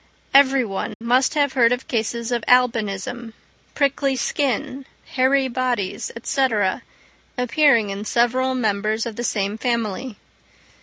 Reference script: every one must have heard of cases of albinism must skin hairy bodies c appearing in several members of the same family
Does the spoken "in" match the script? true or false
true